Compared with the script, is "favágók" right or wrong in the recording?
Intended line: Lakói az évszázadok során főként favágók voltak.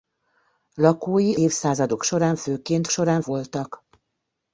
wrong